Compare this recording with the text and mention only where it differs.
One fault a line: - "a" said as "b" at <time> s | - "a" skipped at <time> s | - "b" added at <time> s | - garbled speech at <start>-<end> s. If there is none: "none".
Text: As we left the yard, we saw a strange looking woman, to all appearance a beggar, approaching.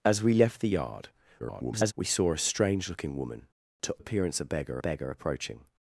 - garbled speech at 1.4-1.9 s
- "all" skipped at 3.9 s
- "beggar" added at 4.8 s